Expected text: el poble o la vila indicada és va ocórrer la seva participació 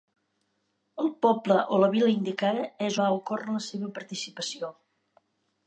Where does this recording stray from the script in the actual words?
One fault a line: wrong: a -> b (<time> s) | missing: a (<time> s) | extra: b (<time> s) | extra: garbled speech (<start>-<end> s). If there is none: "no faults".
no faults